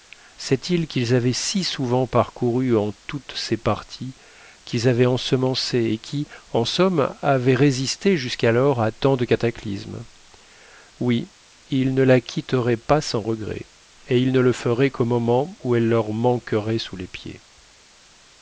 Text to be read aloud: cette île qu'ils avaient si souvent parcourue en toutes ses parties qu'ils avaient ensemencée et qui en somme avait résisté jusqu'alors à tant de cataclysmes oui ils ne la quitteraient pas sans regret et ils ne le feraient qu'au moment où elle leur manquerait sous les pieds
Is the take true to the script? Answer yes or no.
yes